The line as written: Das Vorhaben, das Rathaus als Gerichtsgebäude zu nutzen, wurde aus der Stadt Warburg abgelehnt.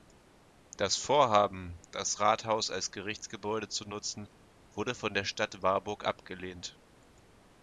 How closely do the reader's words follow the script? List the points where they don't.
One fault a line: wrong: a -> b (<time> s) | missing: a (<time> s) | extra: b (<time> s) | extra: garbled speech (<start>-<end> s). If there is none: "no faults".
wrong: aus -> von (5.0 s)